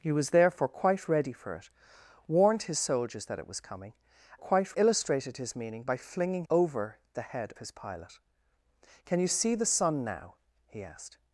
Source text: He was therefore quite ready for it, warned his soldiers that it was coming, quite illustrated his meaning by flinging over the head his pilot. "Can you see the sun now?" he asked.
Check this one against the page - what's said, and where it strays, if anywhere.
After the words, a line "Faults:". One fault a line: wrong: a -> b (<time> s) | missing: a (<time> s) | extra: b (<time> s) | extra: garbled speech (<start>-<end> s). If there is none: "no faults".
He was therefore quite ready for it, warned his soldiers that it was coming, quite illustrated his meaning by flinging over the head his pilot. "Can you see the sun now?" he asked.
Faults:
no faults